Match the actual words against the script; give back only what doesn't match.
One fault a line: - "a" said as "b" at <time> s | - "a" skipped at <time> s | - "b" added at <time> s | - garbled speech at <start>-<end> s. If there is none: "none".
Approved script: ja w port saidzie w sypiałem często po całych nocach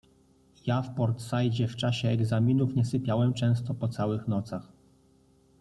- "czasie egzaminów nie" added at 1.8 s